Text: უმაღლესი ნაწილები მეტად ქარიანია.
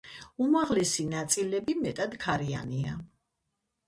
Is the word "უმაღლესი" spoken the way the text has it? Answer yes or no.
yes